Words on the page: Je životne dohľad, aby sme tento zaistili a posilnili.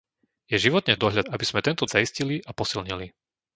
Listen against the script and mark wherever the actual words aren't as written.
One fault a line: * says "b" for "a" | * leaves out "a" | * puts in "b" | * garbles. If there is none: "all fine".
all fine